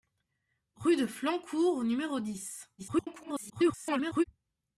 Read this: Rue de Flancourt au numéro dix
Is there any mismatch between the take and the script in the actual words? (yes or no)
yes